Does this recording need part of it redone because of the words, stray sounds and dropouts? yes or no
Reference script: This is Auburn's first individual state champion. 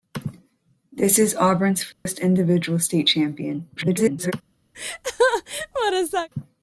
yes